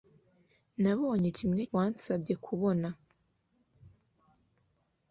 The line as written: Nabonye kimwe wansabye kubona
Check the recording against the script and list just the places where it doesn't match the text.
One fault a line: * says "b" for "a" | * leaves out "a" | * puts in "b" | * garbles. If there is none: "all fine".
all fine